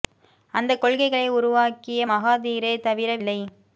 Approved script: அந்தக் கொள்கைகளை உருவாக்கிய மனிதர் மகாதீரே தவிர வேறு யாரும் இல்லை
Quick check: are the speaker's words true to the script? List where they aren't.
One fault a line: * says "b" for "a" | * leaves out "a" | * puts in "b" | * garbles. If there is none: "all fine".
* leaves out "மனிதர்"
* leaves out "வேறு யாரும்"